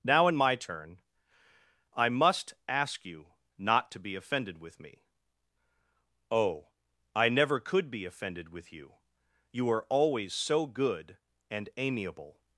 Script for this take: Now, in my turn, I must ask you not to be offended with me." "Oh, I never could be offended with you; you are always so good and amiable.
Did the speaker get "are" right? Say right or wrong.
right